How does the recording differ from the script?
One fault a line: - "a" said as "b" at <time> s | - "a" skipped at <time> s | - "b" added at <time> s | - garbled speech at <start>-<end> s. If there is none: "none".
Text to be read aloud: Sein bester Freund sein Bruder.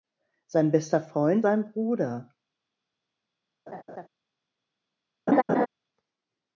none